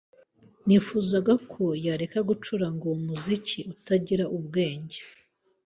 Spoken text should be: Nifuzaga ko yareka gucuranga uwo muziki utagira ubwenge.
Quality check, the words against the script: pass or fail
pass